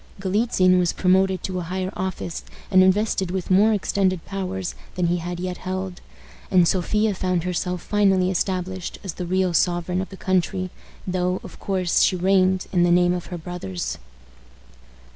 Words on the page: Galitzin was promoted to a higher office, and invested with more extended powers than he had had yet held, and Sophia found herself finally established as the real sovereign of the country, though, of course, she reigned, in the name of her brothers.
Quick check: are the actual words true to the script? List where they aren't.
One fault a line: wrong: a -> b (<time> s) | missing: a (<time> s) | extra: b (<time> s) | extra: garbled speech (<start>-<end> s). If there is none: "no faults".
missing: had (5.4 s)